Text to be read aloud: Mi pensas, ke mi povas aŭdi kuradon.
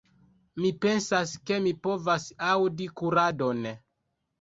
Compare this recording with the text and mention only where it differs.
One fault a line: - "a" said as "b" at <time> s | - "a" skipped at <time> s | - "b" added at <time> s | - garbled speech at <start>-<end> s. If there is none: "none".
none